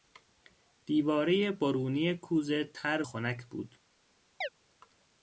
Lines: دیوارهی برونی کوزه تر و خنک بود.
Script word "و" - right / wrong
wrong